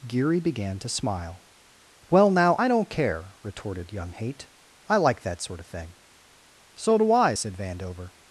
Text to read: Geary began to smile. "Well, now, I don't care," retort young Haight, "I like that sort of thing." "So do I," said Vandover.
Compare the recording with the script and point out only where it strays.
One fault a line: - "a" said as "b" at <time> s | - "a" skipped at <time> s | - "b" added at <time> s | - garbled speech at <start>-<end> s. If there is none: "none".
- "retort" said as "retorted" at 3.4 s